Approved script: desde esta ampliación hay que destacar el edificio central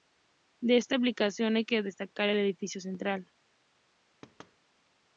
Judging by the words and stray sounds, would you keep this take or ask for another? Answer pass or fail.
fail